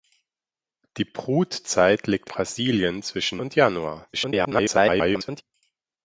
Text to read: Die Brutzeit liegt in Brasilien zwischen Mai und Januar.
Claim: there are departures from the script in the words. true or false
true